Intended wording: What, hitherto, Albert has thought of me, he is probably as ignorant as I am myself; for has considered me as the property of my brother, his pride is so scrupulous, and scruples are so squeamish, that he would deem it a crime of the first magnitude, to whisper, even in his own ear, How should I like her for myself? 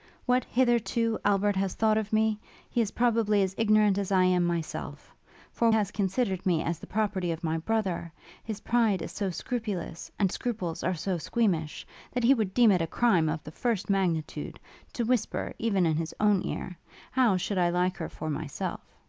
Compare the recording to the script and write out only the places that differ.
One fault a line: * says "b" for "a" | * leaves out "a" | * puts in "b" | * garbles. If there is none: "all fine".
all fine